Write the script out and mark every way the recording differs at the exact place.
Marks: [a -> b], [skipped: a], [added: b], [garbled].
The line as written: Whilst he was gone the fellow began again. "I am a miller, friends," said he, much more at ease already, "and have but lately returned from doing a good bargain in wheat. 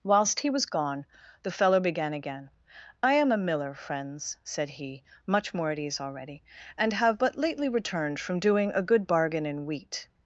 Whilst he was gone the fellow began again. "I am a miller, friends," said he, much more at ease already, "and have but lately returned from doing a good bargain in wheat.